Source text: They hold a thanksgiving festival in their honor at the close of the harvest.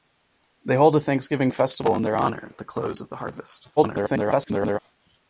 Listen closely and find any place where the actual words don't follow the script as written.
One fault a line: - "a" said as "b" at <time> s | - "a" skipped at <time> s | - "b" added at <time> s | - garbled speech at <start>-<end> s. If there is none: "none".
- garbled speech at 3.8-4.8 s